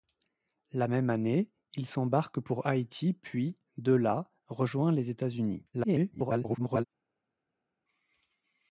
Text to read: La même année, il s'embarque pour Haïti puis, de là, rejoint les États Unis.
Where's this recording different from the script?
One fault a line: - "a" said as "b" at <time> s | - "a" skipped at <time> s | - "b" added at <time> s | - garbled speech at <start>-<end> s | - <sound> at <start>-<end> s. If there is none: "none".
- garbled speech at 5.7-6.8 s